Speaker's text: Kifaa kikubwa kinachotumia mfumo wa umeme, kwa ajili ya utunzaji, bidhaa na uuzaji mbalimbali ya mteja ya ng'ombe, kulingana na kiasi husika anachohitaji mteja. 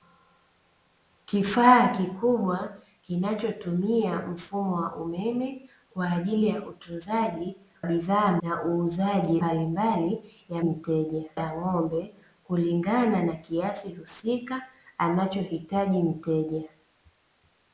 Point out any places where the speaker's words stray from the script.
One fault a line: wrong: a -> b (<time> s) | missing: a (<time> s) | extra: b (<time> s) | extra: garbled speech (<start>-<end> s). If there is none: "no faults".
no faults